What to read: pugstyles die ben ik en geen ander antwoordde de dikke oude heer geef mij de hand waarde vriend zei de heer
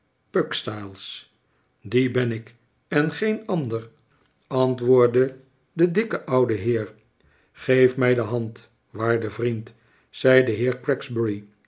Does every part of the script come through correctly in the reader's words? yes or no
yes